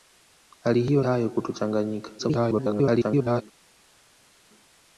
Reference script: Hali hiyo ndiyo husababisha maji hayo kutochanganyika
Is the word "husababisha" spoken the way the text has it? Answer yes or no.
no